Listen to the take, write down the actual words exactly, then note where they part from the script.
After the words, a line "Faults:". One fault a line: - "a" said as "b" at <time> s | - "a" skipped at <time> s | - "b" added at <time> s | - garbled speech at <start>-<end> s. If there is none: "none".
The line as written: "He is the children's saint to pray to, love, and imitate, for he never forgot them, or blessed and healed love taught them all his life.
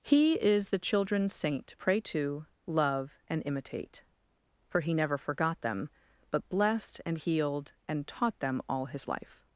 "He is the children's saint to pray to, love, and imitate, for he never forgot them, but blessed and healed and taught them all his life.
Faults:
- "or" said as "but" at 6.3 s
- "love" said as "and" at 7.9 s